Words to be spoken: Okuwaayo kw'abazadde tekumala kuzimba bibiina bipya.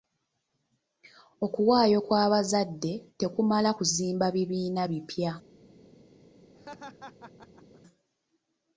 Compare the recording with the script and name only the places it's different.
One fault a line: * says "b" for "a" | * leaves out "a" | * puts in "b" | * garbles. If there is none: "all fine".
all fine